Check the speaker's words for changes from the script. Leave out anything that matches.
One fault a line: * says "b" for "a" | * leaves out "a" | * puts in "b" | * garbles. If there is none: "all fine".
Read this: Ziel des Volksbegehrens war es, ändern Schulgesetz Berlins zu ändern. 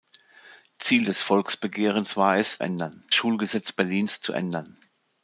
all fine